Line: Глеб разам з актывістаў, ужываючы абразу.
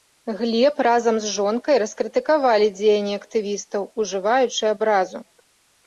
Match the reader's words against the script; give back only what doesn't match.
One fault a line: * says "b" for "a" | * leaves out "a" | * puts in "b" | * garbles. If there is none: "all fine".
* puts in "жонкай раскрытыкавалі дзеянні"